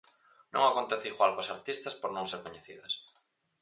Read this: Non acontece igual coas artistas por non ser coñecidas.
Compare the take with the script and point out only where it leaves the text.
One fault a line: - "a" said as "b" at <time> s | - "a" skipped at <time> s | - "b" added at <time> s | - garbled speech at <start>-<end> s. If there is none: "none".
none